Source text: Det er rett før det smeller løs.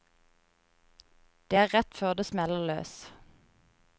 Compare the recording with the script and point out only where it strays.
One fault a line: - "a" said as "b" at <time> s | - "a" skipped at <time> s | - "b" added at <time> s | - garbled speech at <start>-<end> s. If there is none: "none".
none